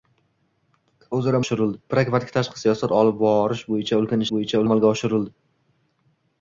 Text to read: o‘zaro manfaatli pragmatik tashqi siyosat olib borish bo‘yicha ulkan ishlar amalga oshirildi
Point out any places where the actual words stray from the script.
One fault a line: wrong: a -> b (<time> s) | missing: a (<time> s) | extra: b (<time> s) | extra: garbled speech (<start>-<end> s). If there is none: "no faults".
wrong: manfaatli -> oshirildi (1.4 s)
wrong: ishlar -> bo‘yicha (4.4 s)